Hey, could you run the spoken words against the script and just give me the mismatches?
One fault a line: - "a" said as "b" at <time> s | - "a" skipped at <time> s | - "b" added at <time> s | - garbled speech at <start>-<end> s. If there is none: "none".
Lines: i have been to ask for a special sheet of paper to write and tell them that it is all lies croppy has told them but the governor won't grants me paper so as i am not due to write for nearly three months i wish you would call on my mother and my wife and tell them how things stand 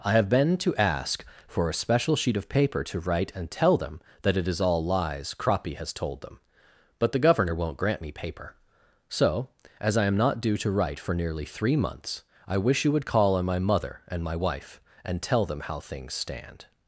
- "grants" said as "grant" at 7.8 s